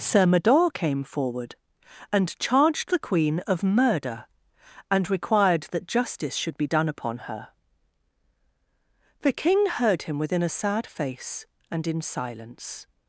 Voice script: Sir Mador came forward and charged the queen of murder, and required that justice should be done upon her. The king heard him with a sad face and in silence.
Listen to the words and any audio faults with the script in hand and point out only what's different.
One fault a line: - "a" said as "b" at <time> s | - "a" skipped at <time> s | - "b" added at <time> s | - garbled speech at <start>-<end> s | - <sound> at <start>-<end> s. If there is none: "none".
- "with" said as "within" at 10.2 s